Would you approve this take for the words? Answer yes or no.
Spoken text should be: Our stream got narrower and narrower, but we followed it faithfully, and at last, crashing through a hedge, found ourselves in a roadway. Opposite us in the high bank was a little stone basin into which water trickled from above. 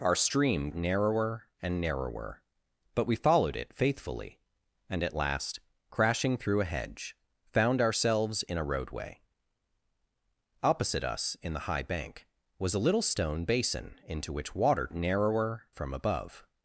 no